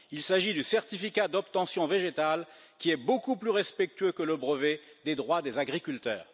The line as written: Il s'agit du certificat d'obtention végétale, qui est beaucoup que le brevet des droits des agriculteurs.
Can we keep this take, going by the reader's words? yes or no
no